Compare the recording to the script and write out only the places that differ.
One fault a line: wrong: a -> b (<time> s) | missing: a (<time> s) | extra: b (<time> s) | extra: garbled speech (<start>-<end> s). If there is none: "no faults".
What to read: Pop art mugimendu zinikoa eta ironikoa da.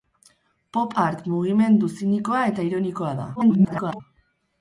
extra: garbled speech (3.3-4.0 s)